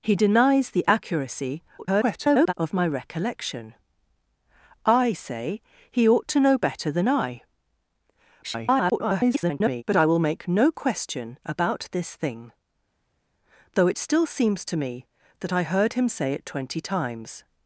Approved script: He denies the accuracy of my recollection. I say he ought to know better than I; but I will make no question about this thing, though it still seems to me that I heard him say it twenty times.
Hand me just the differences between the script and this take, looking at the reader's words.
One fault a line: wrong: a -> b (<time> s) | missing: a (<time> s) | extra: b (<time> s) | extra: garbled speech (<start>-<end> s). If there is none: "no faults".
extra: garbled speech (1.8-2.5 s)
extra: garbled speech (8.4-9.8 s)